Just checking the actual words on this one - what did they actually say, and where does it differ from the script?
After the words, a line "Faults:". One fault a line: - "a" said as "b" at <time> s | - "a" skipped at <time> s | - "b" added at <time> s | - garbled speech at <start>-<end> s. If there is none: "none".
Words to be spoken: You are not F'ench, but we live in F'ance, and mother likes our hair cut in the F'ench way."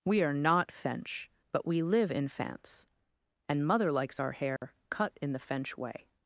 We are not F'ench, but we live in F'ance, and mother likes our hair cut in the F'ench way."
Faults:
- "You" said as "We" at 0.1 s